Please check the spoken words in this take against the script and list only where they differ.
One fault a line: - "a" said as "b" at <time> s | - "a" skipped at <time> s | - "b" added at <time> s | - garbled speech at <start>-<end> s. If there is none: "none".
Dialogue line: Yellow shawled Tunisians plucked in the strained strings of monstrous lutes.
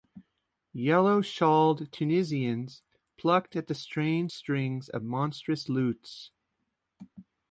- "in" said as "at" at 3.5 s